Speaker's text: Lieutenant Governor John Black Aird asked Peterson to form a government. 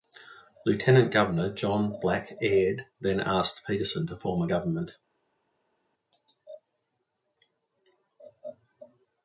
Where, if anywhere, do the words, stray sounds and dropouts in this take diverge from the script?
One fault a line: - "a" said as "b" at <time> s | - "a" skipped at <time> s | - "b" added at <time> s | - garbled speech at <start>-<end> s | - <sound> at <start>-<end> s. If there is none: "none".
- "then" added at 3.0 s